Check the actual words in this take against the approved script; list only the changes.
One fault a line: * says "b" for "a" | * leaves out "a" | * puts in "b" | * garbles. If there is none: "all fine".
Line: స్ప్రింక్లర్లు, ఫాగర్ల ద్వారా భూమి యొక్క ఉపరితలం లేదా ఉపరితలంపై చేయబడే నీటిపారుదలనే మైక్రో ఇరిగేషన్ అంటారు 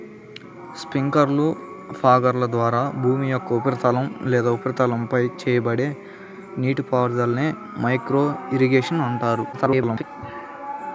* garbles